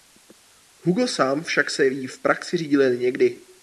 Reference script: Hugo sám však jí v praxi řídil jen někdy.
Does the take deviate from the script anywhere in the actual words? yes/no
yes